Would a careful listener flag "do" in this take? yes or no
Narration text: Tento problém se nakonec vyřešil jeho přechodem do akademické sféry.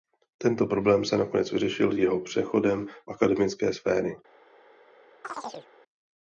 yes